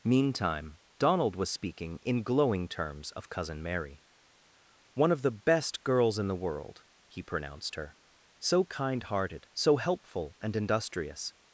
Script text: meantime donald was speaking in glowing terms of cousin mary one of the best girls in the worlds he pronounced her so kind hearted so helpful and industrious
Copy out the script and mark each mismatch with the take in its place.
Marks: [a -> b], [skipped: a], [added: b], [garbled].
meantime donald was speaking in glowing terms of cousin mary one of the best girls in the [worlds -> world] he pronounced her so kind hearted so helpful and industrious